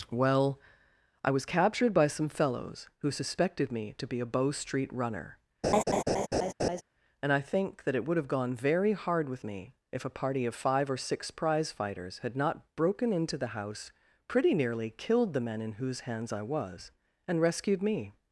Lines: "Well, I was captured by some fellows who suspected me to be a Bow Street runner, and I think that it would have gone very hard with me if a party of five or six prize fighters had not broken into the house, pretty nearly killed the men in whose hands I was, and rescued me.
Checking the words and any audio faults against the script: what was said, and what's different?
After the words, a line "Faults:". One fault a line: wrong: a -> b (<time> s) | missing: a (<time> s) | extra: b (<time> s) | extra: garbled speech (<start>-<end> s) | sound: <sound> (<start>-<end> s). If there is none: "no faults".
"Well, I was captured by some fellows who suspected me to be a Bow Street runner, and I think that it would have gone very hard with me if a party of five or six prize fighters had not broken into the house, pretty nearly killed the men in whose hands I was, and rescued me.
Faults:
sound: laugh (5.6-6.8 s)